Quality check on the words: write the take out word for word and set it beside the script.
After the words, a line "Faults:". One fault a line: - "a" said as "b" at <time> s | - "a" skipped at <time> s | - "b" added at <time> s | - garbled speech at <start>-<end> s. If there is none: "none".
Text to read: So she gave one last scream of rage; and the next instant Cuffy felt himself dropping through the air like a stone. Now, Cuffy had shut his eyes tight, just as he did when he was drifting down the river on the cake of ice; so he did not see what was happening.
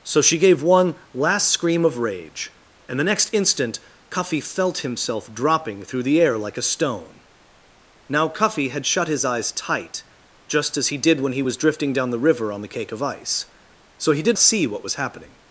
So she gave one last scream of rage; and the next instant Cuffy felt himself dropping through the air like a stone. Now, Cuffy had shut his eyes tight, just as he did when he was drifting down the river on the cake of ice; so he did see what was happening.
Faults:
- "not" skipped at 14.4 s